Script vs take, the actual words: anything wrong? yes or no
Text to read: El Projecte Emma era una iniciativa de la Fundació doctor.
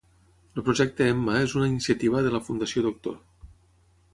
yes